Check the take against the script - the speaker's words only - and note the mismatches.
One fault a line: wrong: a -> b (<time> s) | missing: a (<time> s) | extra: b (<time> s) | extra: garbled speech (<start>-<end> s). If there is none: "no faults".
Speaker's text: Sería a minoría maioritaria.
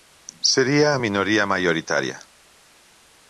no faults